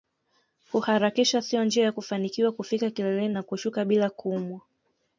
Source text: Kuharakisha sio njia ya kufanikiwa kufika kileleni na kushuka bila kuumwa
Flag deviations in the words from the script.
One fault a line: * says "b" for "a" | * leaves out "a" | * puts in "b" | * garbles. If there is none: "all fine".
all fine